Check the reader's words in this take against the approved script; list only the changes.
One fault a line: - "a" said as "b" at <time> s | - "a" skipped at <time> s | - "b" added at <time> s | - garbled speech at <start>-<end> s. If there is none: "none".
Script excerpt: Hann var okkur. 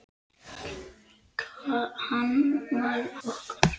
none